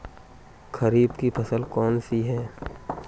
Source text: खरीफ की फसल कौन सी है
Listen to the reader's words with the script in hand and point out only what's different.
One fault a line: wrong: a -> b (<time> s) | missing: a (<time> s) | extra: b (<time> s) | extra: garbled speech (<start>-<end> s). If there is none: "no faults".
no faults